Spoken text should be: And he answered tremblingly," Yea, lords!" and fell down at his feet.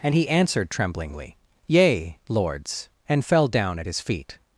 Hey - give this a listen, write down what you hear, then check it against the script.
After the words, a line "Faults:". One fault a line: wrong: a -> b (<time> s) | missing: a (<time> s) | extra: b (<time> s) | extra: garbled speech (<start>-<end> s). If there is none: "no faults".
And he answered tremblingly," Yea, lords!" and fell down at his feet.
Faults:
no faults